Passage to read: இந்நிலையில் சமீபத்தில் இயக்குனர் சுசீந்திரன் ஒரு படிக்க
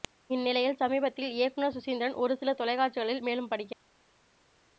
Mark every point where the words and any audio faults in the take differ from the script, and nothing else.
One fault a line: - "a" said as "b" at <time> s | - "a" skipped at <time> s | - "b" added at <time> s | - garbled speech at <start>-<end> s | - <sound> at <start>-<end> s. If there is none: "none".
- "சில தொலைக்காட்சிகளில் மேலும்" added at 2.4 s